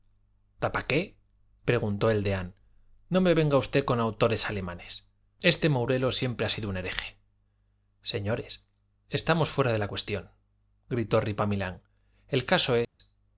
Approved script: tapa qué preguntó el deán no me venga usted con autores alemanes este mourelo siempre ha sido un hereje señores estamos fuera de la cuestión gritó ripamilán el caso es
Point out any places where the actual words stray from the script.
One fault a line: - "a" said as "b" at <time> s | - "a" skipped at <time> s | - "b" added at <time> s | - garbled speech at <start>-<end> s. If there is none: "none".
none